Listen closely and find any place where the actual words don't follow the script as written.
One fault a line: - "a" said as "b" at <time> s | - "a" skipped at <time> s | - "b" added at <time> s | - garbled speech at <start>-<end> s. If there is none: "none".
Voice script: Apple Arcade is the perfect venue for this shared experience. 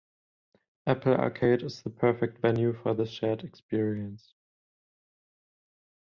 none